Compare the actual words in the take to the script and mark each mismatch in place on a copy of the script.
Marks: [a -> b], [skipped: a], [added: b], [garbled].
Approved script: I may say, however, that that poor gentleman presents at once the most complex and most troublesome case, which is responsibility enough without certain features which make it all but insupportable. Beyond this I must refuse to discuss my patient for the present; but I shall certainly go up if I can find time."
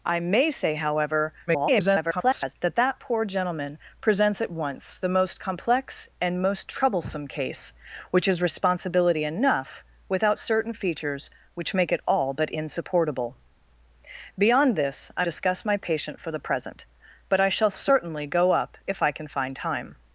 I may say, however, [garbled] that that poor gentleman presents at once the most complex and most troublesome case, which is responsibility enough without certain features which make it all but insupportable. Beyond this I [skipped: must refuse to] discuss my patient for the present; but I shall certainly go up if I can find time."